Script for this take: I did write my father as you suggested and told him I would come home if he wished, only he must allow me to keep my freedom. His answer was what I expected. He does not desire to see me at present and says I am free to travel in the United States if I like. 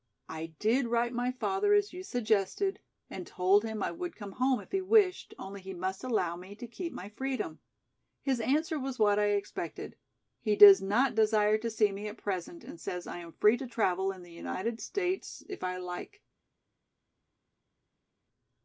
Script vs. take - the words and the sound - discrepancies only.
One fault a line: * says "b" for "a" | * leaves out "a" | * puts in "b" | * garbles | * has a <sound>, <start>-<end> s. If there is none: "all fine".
all fine